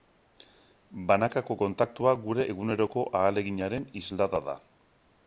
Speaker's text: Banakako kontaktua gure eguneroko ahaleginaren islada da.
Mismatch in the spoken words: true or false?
false